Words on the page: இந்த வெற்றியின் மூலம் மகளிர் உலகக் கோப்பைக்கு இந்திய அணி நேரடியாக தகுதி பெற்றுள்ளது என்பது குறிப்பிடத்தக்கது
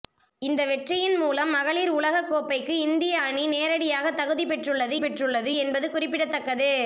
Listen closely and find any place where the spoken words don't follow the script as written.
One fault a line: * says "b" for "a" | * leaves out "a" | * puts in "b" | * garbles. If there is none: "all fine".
* puts in "பெற்றுள்ளது"